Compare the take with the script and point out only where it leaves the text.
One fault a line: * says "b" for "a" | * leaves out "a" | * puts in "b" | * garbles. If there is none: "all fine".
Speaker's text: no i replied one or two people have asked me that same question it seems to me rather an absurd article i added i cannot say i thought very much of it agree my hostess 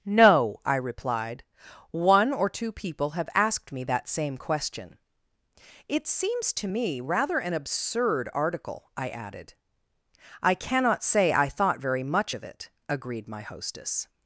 * says "agreed" for "agree"